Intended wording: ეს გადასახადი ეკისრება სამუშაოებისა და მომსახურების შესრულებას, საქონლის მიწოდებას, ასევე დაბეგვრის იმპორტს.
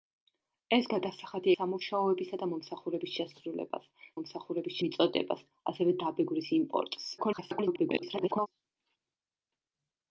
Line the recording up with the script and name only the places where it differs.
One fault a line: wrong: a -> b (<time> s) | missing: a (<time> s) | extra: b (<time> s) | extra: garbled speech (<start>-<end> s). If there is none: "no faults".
missing: ეკისრება (1.5 s)
wrong: საქონლის -> მომსახურების (4.2 s)
extra: garbled speech (7.2-8.5 s)